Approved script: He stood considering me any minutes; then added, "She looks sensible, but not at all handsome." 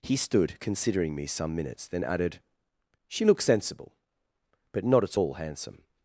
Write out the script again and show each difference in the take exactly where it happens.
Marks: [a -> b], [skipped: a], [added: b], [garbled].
He stood considering me [any -> some] minutes; then added, "She looks sensible, but not at all handsome."